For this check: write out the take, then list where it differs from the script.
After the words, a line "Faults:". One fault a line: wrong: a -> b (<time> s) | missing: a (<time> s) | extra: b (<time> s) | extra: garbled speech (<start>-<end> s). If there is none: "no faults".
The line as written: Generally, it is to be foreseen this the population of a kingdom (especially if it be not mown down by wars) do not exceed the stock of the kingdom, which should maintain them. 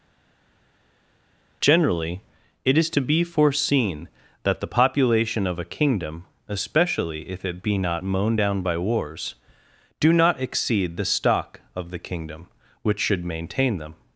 Generally, it is to be foreseen that the population of a kingdom (especially if it be not mown down by wars) do not exceed the stock of the kingdom, which should maintain them.
Faults:
wrong: this -> that (4.4 s)